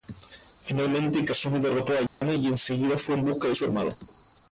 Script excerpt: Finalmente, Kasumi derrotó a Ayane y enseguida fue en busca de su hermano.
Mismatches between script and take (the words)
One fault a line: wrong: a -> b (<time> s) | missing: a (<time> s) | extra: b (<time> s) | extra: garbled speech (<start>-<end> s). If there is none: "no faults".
no faults